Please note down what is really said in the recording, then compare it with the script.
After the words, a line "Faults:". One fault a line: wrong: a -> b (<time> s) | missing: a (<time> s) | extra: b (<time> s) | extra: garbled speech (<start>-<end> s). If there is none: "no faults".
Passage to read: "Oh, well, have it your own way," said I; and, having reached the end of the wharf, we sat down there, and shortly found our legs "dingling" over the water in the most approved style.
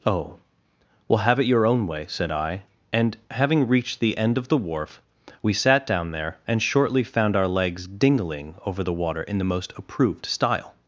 "Oh, well, have it your own way," said I; and, having reached the end of the wharf, we sat down there, and shortly found our legs "dingling" over the water in the most approved style.
Faults:
no faults